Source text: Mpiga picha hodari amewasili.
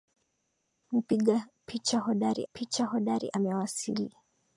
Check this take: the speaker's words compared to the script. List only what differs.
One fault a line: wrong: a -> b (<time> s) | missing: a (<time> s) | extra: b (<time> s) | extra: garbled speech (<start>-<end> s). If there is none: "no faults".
extra: picha hodari (2.5 s)